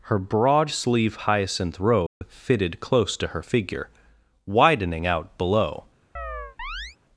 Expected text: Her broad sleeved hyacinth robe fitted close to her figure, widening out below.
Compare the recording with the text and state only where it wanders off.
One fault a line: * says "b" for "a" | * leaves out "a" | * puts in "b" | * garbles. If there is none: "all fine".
* says "sleeve" for "sleeved"